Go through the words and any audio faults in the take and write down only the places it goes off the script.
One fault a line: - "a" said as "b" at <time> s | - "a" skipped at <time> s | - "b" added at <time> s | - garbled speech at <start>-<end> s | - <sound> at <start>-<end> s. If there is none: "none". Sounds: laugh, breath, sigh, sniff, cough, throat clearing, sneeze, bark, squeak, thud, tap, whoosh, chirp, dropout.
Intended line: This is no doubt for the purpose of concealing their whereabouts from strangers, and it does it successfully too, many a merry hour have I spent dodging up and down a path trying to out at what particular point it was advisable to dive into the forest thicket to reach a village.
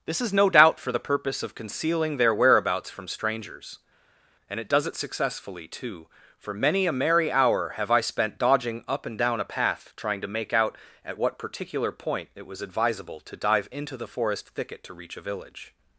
- "for" added at 6.4 s
- "make" added at 10.3 s